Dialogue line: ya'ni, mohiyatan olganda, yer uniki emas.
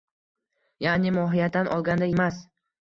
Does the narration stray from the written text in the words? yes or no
yes